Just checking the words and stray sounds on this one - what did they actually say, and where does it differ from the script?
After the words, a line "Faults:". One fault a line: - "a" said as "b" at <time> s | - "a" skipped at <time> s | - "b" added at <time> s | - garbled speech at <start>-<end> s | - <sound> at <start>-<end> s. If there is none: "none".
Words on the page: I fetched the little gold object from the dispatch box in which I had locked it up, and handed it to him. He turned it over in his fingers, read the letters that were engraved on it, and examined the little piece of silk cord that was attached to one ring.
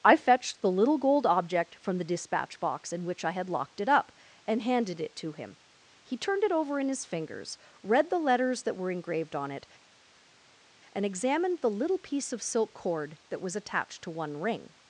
I fetched the little gold object from the dispatch box in which I had locked it up, and handed it to him. He turned it over in his fingers, read the letters that were engraved on it, and examined the little piece of silk cord that was attached to one ring.
Faults:
none